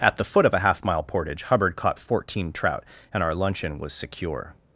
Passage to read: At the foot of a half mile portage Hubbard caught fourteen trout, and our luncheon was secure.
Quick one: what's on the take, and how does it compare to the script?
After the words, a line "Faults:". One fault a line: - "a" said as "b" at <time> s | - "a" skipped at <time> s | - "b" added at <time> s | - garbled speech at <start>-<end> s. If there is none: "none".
At the foot of a half mile portage Hubbard caught fourteen trout, and our luncheon was secure.
Faults:
none